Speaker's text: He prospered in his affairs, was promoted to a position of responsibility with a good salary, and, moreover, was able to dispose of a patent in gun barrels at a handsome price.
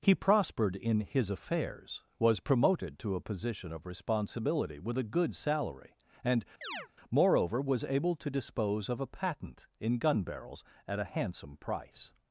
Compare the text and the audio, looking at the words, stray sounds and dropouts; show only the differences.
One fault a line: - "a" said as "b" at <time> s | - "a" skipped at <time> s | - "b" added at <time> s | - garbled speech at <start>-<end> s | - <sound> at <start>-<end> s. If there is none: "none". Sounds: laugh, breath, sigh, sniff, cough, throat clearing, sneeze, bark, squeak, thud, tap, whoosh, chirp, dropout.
- chirp at 6.6-6.9 s